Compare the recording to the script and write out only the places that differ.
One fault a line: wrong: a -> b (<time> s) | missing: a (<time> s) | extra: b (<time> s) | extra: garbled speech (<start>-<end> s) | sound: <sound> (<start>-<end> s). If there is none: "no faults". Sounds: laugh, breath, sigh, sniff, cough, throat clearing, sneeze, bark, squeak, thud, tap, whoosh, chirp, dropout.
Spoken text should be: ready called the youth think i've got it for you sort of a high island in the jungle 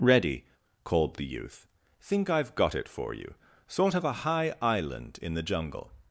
no faults